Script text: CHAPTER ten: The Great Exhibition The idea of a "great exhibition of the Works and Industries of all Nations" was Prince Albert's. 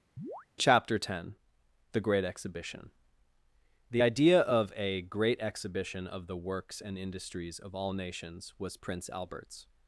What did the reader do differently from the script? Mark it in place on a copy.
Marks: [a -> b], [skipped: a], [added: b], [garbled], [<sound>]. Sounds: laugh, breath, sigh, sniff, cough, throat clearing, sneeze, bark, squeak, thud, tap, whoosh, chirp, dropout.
[chirp] CHAPTER ten: The Great Exhibition The idea of a "great exhibition of the Works and Industries of all Nations" was Prince Albert's.